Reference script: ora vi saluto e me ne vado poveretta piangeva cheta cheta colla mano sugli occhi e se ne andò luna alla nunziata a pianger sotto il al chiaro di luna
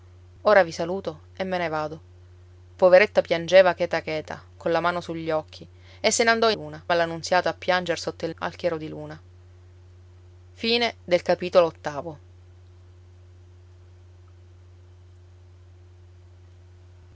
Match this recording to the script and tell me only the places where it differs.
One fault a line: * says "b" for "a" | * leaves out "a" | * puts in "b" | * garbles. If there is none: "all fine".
all fine